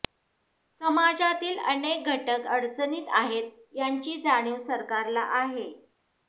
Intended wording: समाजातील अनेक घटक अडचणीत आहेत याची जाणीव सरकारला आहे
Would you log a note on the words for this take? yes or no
no